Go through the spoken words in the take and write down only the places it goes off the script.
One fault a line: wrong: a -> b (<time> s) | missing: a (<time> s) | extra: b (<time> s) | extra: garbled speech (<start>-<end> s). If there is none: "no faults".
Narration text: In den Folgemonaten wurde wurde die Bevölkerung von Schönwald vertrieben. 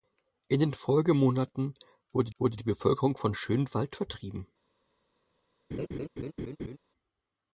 no faults